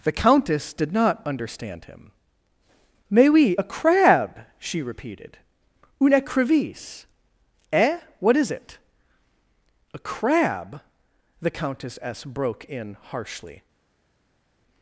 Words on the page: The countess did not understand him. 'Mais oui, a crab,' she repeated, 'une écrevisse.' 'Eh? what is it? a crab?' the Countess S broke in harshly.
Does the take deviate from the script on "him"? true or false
false